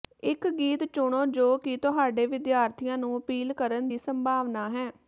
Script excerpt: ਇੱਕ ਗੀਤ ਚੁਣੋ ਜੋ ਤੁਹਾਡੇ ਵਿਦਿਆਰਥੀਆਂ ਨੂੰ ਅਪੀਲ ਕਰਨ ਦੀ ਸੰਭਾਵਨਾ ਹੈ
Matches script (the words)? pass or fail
fail